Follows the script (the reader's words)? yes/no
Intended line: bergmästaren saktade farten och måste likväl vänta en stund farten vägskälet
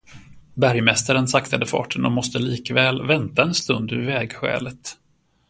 no